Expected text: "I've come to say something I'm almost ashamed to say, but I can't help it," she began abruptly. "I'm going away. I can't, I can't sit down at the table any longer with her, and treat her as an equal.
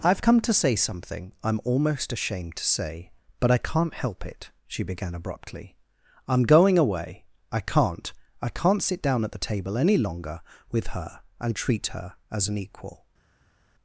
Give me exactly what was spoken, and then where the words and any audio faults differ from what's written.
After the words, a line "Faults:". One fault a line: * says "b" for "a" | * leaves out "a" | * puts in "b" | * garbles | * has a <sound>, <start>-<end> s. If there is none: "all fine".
"I've come to say something I'm almost ashamed to say, but I can't help it," she began abruptly. "I'm going away. I can't, I can't sit down at the table any longer with her, and treat her as an equal.
Faults:
all fine